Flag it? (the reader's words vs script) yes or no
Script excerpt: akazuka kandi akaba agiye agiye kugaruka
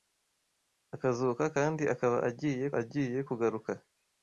no